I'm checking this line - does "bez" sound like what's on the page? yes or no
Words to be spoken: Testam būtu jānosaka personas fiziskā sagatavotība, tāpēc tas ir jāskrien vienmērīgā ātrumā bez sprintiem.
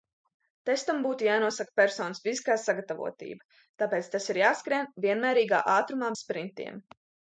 no